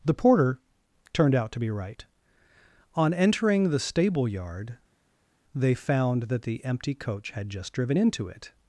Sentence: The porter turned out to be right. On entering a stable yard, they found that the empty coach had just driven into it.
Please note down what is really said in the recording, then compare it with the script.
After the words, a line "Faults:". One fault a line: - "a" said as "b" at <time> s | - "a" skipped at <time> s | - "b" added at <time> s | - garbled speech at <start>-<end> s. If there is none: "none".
The porter turned out to be right. On entering the stable yard, they found that the empty coach had just driven into it.
Faults:
- "a" said as "the" at 3.7 s